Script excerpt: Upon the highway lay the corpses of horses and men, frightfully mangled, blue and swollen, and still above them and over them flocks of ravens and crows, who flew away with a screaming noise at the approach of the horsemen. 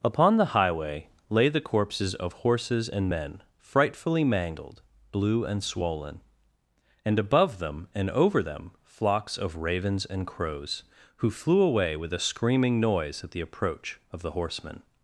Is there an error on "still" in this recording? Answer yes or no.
yes